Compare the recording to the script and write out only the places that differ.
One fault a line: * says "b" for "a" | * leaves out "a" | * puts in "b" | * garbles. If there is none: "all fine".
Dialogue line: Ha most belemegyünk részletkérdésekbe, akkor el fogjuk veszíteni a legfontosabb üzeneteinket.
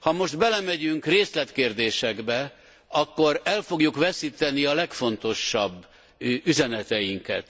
all fine